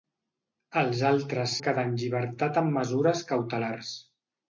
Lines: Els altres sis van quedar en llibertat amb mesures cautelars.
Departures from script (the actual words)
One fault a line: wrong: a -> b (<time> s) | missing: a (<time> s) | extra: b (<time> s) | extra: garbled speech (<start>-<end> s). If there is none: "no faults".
missing: sis van (1.5 s)